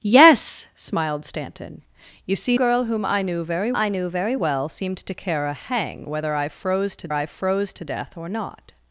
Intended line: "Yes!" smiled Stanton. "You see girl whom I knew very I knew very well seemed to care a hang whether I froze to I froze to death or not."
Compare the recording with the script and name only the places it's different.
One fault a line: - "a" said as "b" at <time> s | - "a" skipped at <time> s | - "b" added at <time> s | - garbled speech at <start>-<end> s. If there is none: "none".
none